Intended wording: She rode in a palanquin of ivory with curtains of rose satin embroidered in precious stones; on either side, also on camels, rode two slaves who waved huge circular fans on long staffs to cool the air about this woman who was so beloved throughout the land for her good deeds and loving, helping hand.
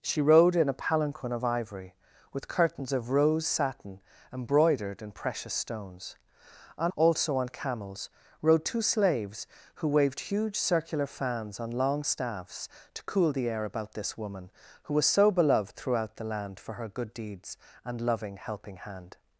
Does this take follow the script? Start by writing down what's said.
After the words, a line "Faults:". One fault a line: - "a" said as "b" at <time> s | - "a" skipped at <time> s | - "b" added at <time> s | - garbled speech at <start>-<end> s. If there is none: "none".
She rode in a palanquin of ivory with curtains of rose satin embroidered in precious stones; on also on camels, rode two slaves who waved huge circular fans on long staffs to cool the air about this woman who was so beloved throughout the land for her good deeds and loving, helping hand.
Faults:
- "either side" skipped at 6.9 s